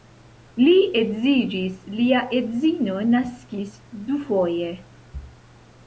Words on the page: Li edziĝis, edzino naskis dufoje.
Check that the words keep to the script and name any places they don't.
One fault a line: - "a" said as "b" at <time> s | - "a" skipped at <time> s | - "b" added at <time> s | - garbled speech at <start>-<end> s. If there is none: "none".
- "lia" added at 2.0 s